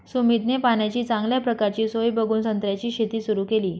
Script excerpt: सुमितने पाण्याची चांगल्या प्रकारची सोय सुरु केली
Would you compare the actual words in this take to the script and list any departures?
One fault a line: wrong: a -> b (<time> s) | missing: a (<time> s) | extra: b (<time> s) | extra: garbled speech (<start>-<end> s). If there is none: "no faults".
extra: बघून संत्र्याची शेती (2.1 s)